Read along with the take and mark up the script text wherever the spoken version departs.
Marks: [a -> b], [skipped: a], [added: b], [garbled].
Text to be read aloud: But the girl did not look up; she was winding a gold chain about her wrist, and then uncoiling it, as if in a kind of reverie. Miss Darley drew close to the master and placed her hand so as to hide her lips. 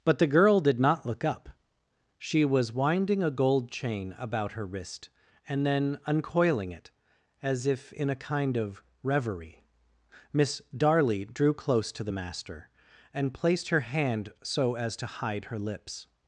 But the girl did not look up; she was winding a gold chain about her wrist, and then uncoiling it, as if in a kind of reverie. Miss Darley drew close to the master and placed her hand so as to hide her lips.